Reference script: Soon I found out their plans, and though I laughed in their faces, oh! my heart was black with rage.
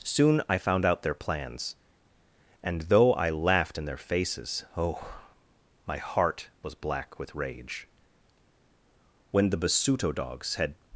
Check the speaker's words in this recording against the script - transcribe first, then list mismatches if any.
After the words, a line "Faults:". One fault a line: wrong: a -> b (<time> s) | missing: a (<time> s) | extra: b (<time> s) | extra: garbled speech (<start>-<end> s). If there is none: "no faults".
Soon I found out their plans, and though I laughed in their faces, oh! my heart was black with rage. "When the Basuto dogs had
Faults:
extra: When the Basuto dogs had (9.3 s)